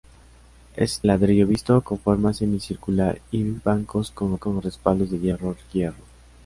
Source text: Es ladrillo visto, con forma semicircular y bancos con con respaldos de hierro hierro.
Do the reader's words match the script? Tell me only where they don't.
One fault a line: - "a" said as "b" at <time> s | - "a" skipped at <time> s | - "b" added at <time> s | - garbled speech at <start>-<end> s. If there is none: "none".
none